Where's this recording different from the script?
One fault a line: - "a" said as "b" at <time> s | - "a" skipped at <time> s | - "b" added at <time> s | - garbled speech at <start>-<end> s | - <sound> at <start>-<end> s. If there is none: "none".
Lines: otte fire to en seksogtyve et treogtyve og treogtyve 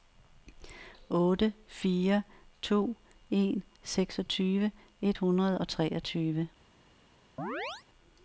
- "treogtyve" said as "hundrede" at 5.1 s
- chirp at 7.4-7.8 s